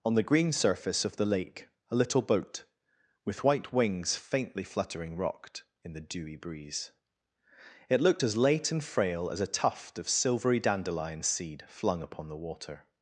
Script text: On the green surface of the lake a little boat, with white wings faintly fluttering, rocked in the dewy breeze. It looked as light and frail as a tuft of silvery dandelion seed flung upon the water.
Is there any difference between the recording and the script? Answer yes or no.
yes